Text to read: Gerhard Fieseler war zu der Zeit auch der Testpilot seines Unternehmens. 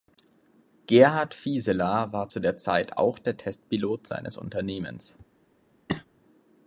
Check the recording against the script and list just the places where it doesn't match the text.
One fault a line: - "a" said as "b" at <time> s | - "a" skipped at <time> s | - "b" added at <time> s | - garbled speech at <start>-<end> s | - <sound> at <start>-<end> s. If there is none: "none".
- cough at 5.9-6.0 s